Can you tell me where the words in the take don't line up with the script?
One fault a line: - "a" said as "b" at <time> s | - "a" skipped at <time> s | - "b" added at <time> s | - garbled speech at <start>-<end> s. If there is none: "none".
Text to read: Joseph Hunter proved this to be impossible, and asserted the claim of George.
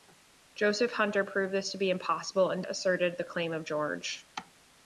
none